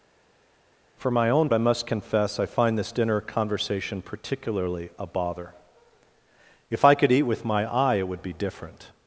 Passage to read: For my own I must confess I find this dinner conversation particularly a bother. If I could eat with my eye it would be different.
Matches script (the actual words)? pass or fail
pass